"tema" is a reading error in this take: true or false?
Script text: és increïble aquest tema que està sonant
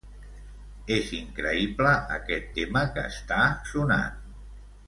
false